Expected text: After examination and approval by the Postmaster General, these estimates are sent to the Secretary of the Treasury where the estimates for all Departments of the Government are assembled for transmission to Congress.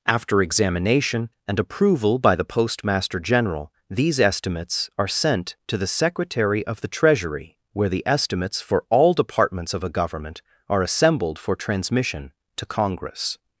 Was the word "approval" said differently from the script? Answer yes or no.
no